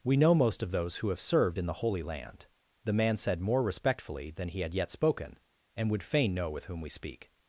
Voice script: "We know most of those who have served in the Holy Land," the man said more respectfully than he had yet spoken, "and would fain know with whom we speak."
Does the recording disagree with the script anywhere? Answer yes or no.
no